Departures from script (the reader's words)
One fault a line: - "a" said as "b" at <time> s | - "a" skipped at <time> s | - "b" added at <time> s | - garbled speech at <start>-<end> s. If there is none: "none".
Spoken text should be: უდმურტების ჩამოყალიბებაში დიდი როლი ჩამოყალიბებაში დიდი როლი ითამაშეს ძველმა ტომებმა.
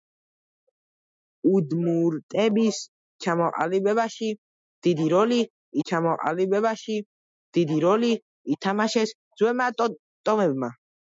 none